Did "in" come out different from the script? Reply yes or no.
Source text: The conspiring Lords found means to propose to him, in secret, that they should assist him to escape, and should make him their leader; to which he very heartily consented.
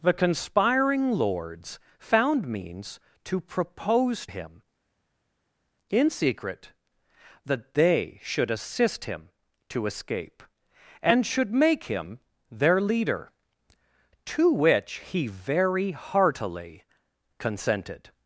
no